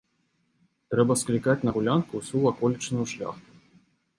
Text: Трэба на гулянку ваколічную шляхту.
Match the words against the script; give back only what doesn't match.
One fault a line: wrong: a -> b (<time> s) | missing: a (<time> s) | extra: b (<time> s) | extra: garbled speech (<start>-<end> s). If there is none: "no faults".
extra: склікаць (1.2 s)
extra: ўсю (2.2 s)